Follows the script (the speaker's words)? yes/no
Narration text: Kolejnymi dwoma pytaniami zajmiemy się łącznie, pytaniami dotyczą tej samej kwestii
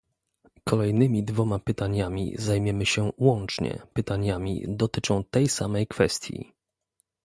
yes